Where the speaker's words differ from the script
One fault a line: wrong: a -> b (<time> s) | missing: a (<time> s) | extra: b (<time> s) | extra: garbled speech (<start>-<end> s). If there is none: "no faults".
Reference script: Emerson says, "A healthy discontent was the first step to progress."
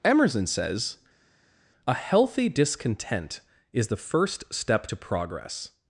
wrong: was -> is (3.7 s)